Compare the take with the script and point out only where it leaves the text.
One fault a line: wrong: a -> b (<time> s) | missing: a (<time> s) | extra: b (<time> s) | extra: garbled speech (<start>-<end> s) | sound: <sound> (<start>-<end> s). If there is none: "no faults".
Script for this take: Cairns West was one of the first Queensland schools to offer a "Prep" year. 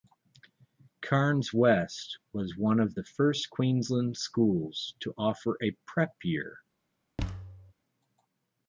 sound: thud (7.2-7.7 s)